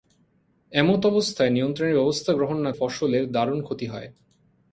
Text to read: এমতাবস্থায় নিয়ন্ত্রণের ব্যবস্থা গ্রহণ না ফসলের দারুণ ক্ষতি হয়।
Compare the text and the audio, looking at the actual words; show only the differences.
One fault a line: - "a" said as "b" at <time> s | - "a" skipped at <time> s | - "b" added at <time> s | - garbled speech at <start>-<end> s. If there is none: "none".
none